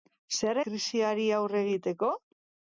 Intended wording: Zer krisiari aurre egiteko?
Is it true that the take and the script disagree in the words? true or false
false